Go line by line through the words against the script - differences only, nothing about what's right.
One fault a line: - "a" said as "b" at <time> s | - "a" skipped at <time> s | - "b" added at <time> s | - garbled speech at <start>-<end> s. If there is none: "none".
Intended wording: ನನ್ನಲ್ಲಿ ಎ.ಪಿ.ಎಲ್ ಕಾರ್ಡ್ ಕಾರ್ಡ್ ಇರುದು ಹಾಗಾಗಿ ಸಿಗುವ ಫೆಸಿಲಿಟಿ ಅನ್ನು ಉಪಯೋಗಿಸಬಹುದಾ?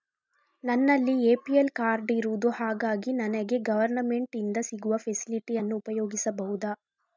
- "ಕಾರ್ಡ್" skipped at 2.1 s
- "ನನಗೆ ಗವರ್ನಮೆಂಟ್ ಇಂದ" added at 3.1 s